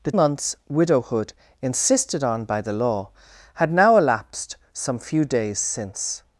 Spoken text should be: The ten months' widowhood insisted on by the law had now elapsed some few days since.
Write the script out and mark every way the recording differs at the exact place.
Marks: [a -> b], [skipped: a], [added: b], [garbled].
The [skipped: ten] months' widowhood insisted on by the law had now elapsed some few days since.